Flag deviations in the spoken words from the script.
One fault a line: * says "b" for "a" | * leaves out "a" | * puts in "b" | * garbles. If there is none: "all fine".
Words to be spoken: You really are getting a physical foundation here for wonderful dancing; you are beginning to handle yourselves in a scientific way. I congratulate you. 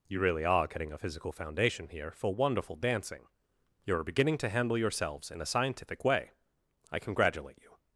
all fine